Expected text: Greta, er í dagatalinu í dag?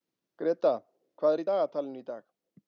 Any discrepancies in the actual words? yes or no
yes